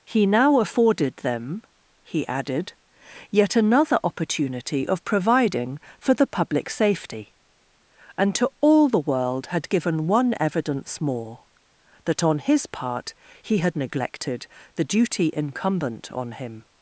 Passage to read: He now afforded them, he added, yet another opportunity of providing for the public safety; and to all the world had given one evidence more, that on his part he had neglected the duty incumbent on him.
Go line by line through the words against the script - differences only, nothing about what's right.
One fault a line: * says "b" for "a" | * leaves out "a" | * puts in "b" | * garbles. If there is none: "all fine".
all fine